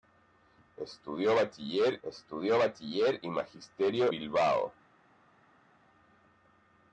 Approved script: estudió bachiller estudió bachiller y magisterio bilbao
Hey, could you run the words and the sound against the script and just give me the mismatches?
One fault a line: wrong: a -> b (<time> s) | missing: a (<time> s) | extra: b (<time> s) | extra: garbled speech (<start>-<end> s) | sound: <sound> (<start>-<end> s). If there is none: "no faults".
no faults